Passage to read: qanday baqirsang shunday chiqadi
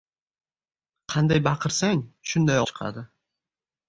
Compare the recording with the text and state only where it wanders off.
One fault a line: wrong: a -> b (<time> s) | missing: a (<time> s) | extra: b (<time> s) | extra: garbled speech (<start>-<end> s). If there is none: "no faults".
no faults